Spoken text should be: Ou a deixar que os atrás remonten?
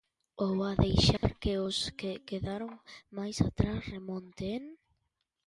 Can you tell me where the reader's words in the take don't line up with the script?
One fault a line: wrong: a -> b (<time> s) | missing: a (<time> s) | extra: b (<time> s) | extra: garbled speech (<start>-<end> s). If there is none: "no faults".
extra: que quedaron máis (2.0 s)